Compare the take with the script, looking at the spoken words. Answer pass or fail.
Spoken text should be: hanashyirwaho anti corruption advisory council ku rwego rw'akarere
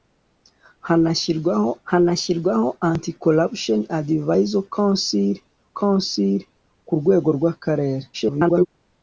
fail